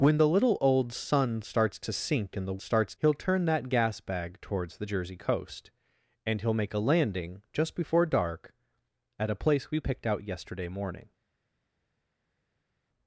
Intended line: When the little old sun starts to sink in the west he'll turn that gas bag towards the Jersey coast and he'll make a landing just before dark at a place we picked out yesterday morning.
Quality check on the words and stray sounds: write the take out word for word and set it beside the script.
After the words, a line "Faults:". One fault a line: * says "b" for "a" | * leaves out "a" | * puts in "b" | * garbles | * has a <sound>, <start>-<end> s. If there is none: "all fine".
When the little old sun starts to sink in the starts he'll turn that gas bag towards the Jersey coast and he'll make a landing just before dark at a place we picked out yesterday morning.
Faults:
* says "starts" for "west"